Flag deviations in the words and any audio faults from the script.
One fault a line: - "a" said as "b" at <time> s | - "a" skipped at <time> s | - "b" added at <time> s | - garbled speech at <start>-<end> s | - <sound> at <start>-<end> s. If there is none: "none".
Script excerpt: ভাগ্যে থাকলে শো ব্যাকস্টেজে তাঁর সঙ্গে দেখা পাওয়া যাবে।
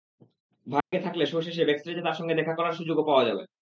- dropout at 0.8-0.9 s
- "শেষে" added at 1.4 s
- "করার সুযোগও" added at 2.6 s